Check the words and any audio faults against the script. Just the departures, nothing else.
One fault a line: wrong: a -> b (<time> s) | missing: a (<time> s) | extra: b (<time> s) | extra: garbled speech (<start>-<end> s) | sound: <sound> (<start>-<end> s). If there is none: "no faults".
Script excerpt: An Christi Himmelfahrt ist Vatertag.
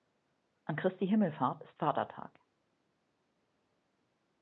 no faults